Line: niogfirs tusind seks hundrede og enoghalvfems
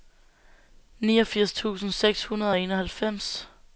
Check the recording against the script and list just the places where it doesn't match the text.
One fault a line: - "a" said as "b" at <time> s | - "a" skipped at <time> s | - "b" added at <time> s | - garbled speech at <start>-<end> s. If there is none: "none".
none